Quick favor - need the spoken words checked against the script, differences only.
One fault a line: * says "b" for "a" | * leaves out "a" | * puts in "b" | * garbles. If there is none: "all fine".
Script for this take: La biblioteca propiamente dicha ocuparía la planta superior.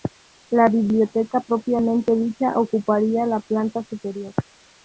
all fine